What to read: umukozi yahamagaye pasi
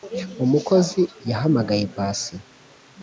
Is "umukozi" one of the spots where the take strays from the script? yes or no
no